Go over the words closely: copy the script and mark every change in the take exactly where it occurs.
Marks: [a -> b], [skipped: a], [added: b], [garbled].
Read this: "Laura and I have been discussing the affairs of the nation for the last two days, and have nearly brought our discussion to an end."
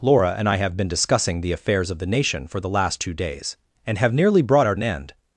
"Laura and I have been discussing the affairs of the nation for the last two days, and have nearly brought our [skipped: discussion to] an end."